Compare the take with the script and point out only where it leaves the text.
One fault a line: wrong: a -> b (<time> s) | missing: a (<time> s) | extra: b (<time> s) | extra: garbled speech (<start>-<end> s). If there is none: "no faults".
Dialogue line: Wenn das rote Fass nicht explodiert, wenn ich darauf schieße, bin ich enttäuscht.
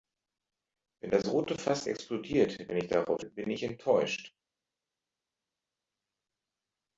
missing: nicht (1.9 s)
missing: schieße (3.2 s)